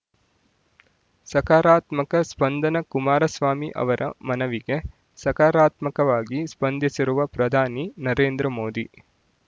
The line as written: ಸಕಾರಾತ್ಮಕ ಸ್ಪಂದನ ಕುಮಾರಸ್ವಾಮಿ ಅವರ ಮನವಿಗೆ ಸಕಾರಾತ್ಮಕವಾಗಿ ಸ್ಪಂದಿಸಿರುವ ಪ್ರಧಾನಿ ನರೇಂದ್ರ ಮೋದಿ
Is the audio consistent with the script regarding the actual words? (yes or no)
yes